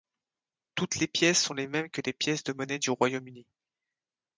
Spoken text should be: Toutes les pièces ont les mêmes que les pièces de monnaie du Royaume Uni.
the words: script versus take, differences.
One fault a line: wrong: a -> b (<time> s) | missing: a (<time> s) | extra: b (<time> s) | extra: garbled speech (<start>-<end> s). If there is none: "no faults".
no faults